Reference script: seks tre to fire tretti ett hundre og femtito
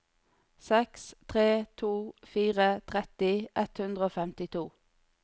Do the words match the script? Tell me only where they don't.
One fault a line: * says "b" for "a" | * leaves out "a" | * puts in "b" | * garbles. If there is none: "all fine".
all fine